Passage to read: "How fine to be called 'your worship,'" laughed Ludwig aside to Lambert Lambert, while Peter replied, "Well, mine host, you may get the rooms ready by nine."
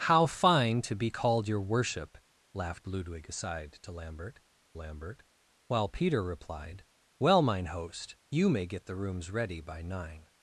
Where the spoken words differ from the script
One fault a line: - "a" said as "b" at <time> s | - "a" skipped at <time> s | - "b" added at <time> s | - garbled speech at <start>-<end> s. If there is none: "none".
none